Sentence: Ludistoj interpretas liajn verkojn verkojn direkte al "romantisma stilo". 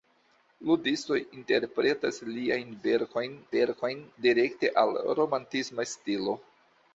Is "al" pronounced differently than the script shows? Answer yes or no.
no